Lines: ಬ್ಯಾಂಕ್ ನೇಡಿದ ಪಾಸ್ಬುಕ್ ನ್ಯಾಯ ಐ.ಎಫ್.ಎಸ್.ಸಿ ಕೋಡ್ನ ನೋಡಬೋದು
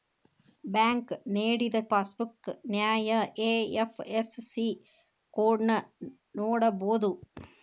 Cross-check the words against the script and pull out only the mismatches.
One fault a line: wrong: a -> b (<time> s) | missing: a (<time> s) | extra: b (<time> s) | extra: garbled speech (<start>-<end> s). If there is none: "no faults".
no faults